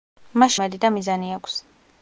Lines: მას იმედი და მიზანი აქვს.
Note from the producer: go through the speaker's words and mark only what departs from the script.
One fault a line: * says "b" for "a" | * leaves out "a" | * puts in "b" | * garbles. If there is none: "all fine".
all fine